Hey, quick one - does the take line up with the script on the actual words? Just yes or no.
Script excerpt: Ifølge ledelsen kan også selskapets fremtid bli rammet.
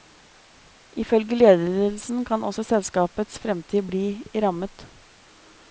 yes